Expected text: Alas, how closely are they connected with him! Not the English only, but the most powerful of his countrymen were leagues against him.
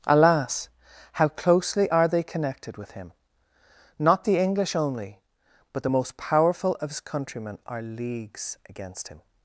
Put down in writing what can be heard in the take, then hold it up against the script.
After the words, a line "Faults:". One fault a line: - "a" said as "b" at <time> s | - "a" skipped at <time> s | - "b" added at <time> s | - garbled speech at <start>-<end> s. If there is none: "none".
Alas, how closely are they connected with him! Not the English only, but the most powerful of his countrymen are leagues against him.
Faults:
- "were" said as "are" at 7.7 s